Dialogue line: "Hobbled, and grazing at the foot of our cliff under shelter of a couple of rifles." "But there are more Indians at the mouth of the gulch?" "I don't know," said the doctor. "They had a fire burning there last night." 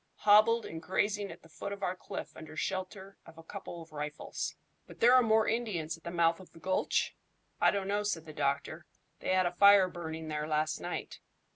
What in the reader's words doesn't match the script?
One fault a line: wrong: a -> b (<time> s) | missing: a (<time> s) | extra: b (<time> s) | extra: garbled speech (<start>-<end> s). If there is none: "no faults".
no faults